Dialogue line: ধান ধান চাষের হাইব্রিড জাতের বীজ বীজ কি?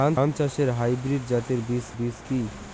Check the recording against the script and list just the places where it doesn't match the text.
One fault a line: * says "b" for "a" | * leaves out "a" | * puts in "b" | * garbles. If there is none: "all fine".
all fine